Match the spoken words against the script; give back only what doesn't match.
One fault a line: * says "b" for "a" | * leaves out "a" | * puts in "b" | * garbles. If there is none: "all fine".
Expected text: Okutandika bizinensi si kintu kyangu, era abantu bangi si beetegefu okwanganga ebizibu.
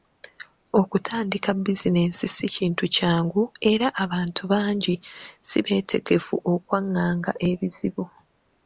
all fine